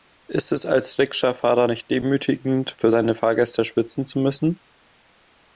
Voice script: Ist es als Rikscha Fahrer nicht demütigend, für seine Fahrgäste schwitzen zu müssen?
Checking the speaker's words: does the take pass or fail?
pass